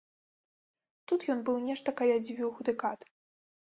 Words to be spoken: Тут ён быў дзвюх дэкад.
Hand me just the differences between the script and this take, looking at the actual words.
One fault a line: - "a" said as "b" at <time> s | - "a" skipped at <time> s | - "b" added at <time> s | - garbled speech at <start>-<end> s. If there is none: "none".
- "нешта каля" added at 1.7 s